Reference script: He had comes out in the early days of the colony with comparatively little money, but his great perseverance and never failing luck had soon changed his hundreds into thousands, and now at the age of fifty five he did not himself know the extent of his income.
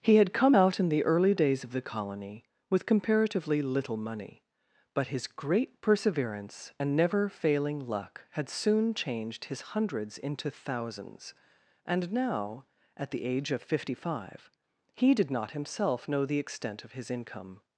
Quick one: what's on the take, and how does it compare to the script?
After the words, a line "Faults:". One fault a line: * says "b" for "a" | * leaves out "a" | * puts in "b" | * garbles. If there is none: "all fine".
He had come out in the early days of the colony with comparatively little money, but his great perseverance and never failing luck had soon changed his hundreds into thousands, and now at the age of fifty five he did not himself know the extent of his income.
Faults:
* says "come" for "comes"